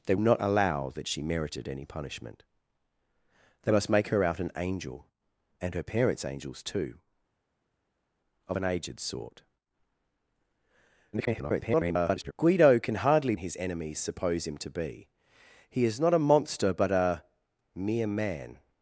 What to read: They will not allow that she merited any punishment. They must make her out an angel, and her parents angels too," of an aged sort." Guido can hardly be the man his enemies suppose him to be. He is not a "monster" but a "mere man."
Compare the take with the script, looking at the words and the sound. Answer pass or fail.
fail